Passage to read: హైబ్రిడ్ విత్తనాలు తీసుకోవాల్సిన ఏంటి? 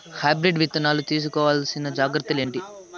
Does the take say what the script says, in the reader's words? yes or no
no